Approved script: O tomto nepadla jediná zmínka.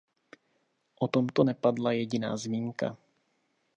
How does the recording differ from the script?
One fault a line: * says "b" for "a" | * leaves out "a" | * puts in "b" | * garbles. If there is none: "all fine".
all fine